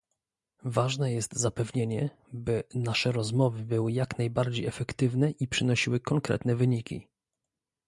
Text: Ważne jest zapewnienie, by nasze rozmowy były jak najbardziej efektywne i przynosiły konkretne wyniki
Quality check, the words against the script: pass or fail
pass